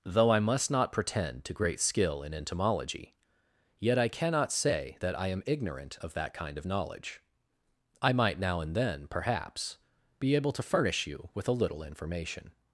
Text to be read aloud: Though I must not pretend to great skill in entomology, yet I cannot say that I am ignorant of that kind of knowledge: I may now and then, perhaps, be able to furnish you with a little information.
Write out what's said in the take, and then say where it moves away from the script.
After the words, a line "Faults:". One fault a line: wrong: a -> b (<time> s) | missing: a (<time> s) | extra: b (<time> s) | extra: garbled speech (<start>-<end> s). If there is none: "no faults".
Though I must not pretend to great skill in entomology, yet I cannot say that I am ignorant of that kind of knowledge: I might now and then, perhaps, be able to furnish you with a little information.
Faults:
wrong: may -> might (8.1 s)